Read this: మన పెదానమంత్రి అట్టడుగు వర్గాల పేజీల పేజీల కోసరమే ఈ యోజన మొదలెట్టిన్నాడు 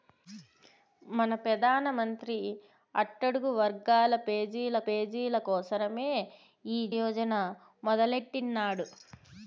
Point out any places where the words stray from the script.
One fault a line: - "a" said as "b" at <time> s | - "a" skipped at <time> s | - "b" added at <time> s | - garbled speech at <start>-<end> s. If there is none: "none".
none